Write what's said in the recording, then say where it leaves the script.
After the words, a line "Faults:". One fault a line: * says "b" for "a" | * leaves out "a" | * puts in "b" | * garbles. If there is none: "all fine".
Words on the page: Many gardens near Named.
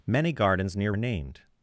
Many gardens near Named.
Faults:
all fine